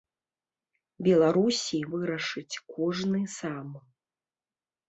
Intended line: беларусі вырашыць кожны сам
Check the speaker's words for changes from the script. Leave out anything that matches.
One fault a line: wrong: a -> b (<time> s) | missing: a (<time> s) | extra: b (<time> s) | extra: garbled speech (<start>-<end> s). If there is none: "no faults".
no faults